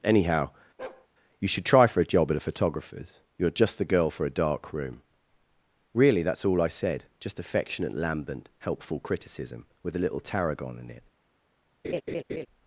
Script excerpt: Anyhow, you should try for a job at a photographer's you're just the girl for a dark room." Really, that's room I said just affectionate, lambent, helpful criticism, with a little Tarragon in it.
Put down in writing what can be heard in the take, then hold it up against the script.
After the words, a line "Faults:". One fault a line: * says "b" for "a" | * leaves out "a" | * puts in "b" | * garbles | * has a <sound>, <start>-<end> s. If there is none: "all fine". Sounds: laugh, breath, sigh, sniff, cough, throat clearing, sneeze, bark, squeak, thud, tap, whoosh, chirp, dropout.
Anyhow, you should try for a job at a photographer's you're just the girl for a dark room." Really, that's all I said just affectionate, lambent, helpful criticism, with a little Tarragon in it.
Faults:
* has a bark, 0.8-1.1 s
* says "all" for "room"
* has a laugh, 11.8-12.5 s